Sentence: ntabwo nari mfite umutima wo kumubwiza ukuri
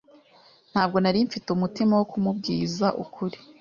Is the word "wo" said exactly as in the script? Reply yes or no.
yes